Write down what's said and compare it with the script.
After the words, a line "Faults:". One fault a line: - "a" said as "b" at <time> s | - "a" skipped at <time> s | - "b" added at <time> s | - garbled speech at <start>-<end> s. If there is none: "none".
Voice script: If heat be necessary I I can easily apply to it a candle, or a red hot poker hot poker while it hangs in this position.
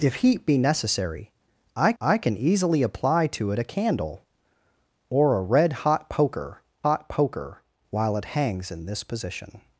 If heat be necessary I I can easily apply to it a candle, or a red hot poker hot poker while it hangs in this position.
Faults:
none